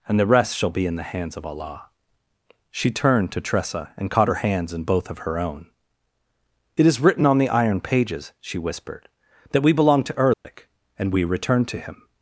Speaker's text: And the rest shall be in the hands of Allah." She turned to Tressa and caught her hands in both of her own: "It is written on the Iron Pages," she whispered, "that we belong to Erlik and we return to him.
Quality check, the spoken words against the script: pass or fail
pass